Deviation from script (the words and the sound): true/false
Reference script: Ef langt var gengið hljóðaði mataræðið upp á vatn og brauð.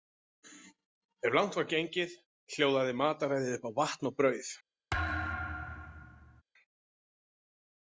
true